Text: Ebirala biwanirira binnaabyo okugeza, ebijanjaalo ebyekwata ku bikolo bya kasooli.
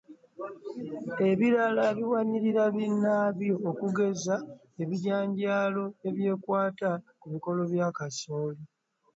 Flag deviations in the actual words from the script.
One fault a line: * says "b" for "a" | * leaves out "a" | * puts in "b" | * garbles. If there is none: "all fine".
all fine